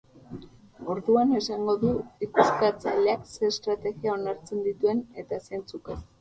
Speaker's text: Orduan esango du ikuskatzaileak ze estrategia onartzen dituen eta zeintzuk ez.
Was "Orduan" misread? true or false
false